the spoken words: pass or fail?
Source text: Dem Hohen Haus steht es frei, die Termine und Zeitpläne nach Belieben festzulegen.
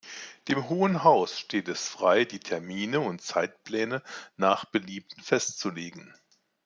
pass